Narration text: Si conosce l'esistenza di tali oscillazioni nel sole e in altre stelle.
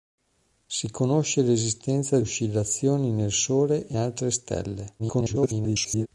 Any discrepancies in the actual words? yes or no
yes